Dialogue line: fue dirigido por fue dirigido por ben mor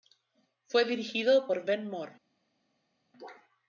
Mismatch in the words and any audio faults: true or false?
true